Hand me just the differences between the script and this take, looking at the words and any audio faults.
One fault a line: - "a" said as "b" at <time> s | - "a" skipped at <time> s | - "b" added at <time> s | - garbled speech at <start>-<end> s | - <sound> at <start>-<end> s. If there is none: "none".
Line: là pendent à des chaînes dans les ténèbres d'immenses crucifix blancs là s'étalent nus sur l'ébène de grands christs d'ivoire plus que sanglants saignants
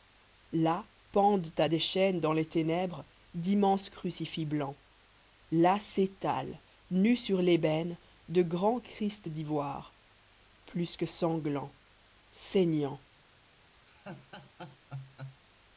- laugh at 13.9-15.4 s